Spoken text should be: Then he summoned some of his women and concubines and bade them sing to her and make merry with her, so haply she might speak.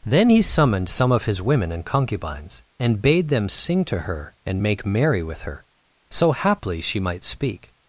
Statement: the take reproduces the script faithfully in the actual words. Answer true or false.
true